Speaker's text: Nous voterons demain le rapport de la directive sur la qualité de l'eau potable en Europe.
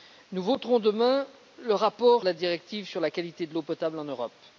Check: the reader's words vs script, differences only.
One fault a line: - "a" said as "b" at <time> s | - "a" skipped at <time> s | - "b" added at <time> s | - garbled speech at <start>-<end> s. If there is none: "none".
none